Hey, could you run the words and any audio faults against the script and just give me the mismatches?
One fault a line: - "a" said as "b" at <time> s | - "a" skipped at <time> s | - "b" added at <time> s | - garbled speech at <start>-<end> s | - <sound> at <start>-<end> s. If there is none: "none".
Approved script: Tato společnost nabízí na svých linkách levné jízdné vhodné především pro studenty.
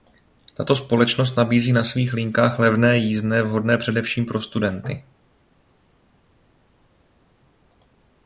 none